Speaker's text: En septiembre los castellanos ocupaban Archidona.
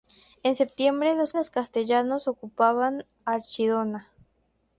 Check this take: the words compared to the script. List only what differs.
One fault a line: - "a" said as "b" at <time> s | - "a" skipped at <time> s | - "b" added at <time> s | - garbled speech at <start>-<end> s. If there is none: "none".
- "los" added at 1.3 s